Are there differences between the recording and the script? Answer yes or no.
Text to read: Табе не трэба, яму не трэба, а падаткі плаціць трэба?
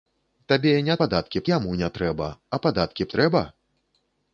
yes